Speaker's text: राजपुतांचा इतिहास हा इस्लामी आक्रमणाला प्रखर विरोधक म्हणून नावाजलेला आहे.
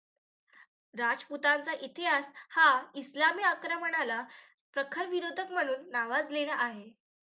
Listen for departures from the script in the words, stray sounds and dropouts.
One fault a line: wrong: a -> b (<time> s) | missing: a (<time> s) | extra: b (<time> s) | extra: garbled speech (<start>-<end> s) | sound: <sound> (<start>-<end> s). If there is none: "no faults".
no faults